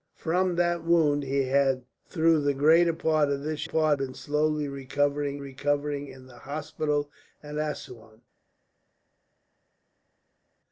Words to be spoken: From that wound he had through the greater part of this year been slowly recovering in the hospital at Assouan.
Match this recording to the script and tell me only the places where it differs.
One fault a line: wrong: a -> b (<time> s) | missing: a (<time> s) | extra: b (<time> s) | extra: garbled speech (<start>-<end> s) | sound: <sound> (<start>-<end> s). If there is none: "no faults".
wrong: year -> part (3.6 s)
extra: recovering (5.4 s)